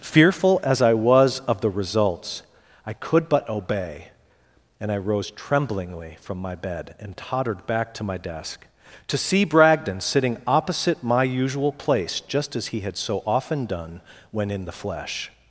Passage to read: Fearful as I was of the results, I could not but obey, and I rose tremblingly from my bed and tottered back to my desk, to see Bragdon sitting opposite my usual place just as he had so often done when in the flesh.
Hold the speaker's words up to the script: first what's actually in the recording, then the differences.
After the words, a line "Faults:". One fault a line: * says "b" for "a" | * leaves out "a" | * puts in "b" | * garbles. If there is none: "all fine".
Fearful as I was of the results, I could but obey, and I rose tremblingly from my bed and tottered back to my desk, to see Bragdon sitting opposite my usual place just as he had so often done when in the flesh.
Faults:
* leaves out "not"